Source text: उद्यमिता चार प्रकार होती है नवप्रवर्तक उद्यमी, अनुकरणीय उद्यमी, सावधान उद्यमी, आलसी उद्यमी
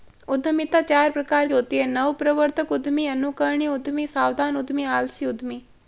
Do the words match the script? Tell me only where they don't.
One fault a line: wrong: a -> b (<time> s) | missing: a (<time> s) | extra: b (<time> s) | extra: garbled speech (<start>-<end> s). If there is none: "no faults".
no faults